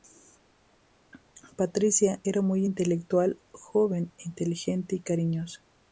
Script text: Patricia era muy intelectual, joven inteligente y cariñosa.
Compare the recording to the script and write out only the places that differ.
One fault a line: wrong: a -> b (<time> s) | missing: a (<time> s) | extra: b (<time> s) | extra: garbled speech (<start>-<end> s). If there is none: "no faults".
no faults